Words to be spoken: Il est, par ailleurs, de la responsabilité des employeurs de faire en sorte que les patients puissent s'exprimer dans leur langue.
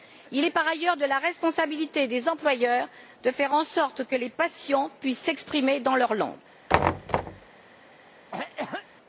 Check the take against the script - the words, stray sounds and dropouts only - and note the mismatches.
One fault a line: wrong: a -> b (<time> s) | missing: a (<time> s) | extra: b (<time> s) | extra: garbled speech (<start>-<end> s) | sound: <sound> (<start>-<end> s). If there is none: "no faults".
sound: thud (6.7-7.5 s)
sound: cough (8.3-8.9 s)